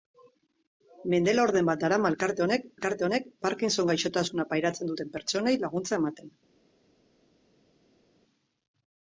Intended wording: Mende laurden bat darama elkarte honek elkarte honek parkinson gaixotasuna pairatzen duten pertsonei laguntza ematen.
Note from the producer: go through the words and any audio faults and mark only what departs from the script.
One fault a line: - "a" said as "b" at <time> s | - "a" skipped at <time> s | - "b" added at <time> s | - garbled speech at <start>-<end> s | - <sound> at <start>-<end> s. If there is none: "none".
none